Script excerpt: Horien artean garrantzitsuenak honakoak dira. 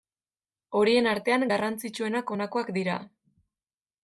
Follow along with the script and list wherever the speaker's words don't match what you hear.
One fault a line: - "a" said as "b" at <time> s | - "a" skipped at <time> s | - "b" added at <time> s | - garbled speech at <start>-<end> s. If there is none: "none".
none